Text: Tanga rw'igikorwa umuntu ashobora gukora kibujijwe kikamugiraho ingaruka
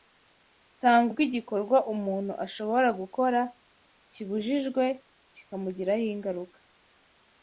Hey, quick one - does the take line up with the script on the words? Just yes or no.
yes